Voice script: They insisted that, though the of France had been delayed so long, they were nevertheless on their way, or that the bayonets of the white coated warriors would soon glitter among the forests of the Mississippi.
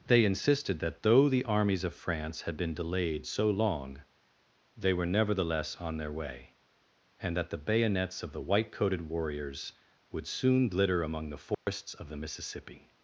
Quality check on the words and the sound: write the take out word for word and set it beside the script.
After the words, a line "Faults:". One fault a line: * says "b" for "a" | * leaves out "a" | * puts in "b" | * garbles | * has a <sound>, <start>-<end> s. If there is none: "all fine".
They insisted that, though the armies of France had been delayed so long, they were nevertheless on their way, and that the bayonets of the white coated warriors would soon glitter among the forests of the Mississippi.
Faults:
* puts in "armies"
* says "and" for "or"
* has a dropout, 11.5-11.7 s